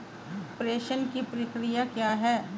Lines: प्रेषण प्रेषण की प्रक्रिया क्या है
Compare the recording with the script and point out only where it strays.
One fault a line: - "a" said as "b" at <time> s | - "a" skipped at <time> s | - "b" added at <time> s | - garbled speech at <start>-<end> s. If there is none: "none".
- "प्रेषण" skipped at 1.1 s